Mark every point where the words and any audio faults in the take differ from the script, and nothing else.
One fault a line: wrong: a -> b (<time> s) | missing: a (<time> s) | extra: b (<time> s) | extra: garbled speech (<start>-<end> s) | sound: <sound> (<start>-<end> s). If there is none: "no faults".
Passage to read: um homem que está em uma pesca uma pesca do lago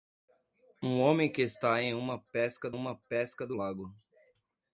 no faults